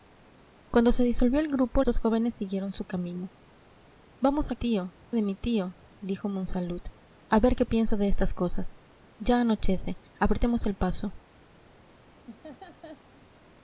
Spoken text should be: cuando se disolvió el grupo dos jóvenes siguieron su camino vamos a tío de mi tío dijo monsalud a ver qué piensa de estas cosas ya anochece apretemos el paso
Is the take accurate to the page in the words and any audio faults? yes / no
no